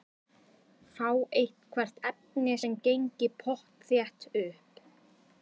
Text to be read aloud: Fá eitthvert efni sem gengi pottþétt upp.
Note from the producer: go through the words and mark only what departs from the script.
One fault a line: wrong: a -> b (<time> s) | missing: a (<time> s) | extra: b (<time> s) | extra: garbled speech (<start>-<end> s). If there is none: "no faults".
no faults